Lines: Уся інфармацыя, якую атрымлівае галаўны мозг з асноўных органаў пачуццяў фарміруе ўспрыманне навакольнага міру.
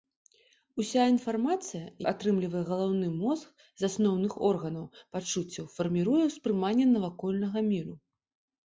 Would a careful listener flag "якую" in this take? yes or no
yes